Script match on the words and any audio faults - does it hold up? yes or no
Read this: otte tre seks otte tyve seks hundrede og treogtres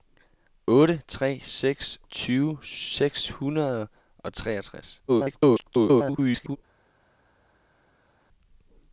no